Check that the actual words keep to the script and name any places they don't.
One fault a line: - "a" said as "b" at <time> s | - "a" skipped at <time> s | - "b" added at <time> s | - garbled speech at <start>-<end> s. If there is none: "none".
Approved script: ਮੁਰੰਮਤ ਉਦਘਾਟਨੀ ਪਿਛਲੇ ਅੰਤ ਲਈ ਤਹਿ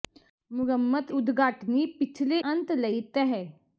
none